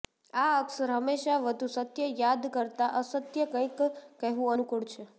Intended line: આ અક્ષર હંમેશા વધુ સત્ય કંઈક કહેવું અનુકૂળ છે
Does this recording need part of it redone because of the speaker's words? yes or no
yes